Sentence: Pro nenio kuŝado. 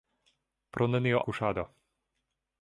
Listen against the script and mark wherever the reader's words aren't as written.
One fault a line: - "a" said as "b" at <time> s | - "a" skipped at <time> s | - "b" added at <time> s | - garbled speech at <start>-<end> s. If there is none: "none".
none